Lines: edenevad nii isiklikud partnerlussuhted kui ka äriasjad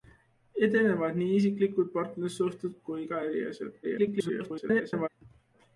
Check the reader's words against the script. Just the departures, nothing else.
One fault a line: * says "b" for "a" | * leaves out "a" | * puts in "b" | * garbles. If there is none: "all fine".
* garbles